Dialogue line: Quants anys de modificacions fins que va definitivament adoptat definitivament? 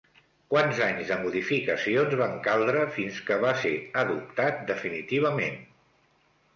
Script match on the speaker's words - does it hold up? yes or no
no